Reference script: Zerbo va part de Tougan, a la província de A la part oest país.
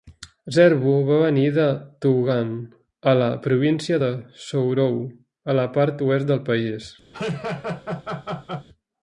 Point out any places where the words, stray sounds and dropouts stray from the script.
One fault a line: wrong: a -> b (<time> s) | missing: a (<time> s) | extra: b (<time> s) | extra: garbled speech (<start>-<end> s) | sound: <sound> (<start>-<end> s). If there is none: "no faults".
wrong: part -> venir (1.2 s)
extra: Sourou (4.4 s)
extra: del (6.3 s)
sound: laugh (7.1-8.7 s)